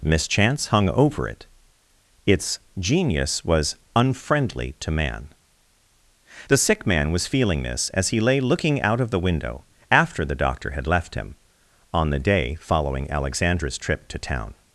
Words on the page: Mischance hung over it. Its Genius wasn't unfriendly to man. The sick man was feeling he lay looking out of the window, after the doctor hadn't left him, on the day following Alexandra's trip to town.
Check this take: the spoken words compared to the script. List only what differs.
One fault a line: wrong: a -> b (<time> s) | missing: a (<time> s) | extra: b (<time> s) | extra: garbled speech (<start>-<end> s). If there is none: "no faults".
wrong: wasn't -> was (3.5 s)
extra: this as (7.6 s)
wrong: hadn't -> had (10.7 s)